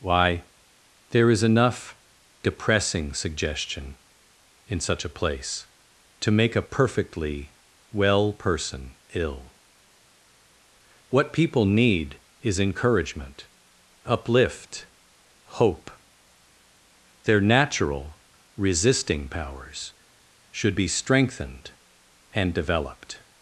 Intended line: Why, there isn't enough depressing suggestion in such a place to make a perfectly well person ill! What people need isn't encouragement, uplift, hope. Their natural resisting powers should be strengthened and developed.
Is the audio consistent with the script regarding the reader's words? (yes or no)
no